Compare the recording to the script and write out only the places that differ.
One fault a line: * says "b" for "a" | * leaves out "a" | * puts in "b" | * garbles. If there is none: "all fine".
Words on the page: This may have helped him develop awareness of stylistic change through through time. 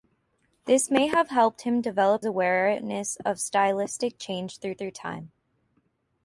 all fine